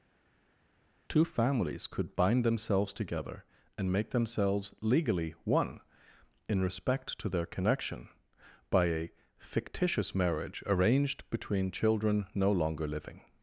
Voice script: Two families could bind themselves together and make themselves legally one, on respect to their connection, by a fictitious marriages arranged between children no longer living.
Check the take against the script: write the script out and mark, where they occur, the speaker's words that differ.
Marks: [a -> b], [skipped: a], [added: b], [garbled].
Two families could bind themselves together and make themselves legally one, [on -> in] respect to their connection, by a fictitious [marriages -> marriage] arranged between children no longer living.